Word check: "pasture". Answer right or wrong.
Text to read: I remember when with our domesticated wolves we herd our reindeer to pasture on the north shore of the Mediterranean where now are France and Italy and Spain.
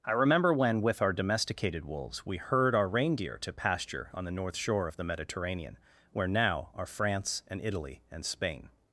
right